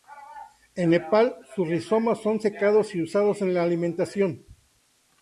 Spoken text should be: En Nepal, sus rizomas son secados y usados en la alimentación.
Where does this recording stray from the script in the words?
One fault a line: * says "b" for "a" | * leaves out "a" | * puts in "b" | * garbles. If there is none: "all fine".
all fine